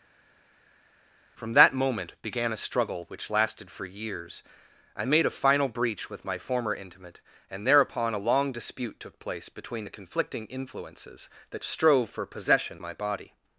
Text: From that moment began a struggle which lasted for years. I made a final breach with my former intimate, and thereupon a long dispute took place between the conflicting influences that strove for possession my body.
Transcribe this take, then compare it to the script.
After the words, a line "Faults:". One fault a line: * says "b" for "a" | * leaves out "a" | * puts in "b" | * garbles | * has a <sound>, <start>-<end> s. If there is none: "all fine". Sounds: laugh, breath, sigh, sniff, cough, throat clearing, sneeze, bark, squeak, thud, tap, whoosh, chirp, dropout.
From that moment began a struggle which lasted for years. I made a final breach with my former intimate, and thereupon a long dispute took place between the conflicting influences that strove for possession my body.
Faults:
all fine